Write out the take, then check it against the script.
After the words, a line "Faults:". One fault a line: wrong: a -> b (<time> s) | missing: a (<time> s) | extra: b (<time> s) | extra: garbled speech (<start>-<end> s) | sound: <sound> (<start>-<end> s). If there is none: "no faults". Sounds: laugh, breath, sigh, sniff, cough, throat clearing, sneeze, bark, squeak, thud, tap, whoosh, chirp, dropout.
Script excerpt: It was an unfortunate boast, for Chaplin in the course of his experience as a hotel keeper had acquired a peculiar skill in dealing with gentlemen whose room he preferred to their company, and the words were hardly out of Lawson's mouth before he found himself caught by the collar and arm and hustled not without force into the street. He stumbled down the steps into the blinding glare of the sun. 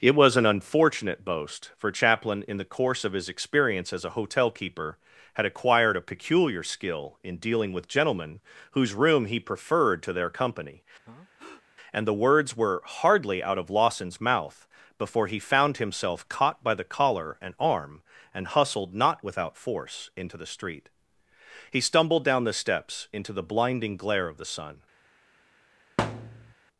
It was an unfortunate boast, for Chaplin in the course of his experience as a hotel keeper had acquired a peculiar skill in dealing with gentlemen whose room he preferred to their company, and the words were hardly out of Lawson's mouth before he found himself caught by the collar and arm and hustled not without force into the street. He stumbled down the steps into the blinding glare of the sun.
Faults:
sound: breath (11.1-11.6 s)
sound: thud (26.0-26.5 s)